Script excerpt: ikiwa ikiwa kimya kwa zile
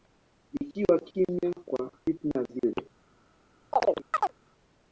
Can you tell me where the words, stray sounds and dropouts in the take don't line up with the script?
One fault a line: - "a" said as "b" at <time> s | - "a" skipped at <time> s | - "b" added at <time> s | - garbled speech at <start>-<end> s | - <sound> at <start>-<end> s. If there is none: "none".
- "ikiwa" skipped at 1.0 s
- "fitna" added at 2.0 s
- chirp at 3.7-4.3 s